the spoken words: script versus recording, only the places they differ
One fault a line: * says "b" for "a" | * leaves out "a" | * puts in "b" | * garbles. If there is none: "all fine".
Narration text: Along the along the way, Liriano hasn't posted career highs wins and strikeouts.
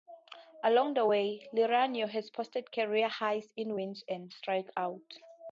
* leaves out "along the"
* says "has" for "hasn't"
* puts in "in"